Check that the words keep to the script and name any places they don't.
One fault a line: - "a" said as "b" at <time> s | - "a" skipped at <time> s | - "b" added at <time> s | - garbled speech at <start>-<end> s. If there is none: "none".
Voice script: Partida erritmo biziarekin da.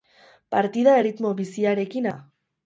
none